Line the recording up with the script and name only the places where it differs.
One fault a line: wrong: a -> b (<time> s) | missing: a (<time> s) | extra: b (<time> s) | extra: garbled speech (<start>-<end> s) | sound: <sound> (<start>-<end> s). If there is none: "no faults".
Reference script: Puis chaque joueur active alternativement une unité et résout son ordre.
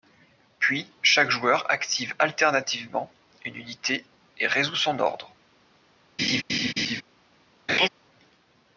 sound: laugh (6.2-7.0 s)
sound: laugh (7.7-7.9 s)